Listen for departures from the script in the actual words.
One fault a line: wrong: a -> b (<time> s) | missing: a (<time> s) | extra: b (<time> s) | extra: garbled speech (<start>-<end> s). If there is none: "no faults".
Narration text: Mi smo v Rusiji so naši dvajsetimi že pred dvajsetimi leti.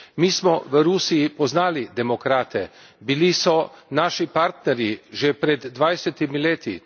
extra: poznali demokrate bili (1.3 s)
wrong: dvajsetimi -> partnerji (4.3 s)